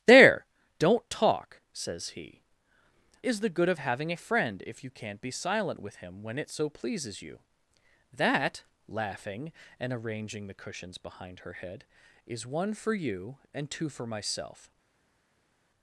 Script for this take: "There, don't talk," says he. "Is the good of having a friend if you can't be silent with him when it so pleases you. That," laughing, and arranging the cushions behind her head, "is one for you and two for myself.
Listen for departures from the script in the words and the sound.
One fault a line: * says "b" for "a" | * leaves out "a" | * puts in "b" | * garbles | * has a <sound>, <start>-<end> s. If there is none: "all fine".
all fine